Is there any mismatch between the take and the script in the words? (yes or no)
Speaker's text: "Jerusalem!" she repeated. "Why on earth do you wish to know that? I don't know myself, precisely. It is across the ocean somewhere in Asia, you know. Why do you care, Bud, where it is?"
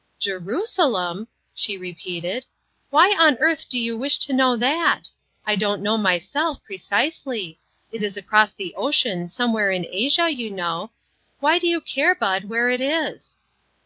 no